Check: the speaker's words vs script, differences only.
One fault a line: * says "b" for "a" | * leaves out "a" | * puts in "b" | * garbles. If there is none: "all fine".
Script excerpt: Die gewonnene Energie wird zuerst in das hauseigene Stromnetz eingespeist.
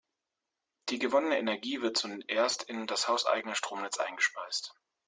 all fine